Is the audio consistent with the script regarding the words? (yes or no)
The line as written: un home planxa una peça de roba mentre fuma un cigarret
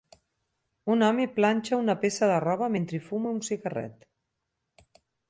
yes